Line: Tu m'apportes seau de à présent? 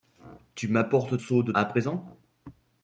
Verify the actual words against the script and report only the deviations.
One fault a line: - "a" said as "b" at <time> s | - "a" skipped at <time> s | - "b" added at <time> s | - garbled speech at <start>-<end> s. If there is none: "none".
none